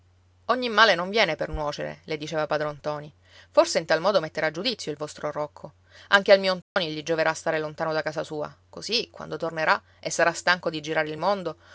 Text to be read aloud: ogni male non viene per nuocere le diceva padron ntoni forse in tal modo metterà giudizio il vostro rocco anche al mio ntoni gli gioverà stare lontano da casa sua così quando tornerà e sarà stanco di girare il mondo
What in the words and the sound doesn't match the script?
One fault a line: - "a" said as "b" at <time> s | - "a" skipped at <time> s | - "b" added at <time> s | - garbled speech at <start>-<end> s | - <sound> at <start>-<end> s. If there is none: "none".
- dropout at 6.6-6.8 s